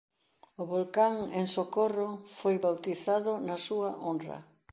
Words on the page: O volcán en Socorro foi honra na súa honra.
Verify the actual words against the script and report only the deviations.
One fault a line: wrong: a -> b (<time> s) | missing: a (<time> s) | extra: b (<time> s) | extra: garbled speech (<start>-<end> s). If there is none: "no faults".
wrong: honra -> bautizado (2.7 s)